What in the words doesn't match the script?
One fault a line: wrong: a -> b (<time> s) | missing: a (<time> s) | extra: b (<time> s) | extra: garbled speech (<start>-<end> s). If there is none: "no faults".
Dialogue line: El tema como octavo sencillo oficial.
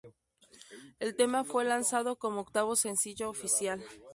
extra: fue lanzado (1.4 s)